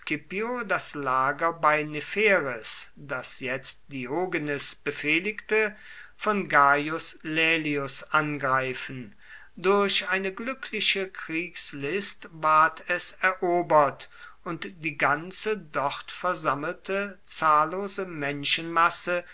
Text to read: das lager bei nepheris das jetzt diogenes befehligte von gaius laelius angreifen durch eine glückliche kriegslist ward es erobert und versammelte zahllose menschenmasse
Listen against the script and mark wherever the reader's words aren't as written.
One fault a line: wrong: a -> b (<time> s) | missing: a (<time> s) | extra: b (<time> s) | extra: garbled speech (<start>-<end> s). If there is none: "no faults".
extra: die ganze dort (14.8 s)